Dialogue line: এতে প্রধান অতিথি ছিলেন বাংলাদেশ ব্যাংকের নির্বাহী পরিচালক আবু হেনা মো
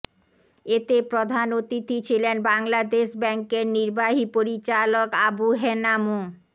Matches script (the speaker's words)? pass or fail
pass